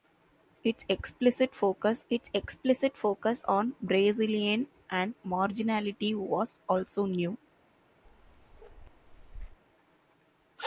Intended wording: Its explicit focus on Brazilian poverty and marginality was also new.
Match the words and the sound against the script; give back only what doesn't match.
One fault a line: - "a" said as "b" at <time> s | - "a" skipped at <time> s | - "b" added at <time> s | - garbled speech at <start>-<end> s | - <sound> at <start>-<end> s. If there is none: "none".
- "its explicit focus" added at 2.1 s
- "poverty" skipped at 4.7 s
- bark at 8.0-9.6 s